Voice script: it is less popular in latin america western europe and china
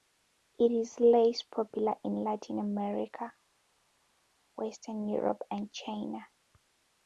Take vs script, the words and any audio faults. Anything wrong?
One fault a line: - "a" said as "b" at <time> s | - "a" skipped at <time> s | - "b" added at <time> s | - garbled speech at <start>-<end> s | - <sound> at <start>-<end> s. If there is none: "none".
none